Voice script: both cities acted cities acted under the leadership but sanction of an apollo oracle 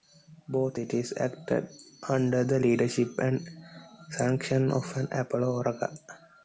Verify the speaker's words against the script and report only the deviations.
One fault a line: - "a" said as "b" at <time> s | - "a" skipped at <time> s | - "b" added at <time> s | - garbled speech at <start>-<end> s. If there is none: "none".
- "cities acted" skipped at 1.7 s
- "but" said as "and" at 3.2 s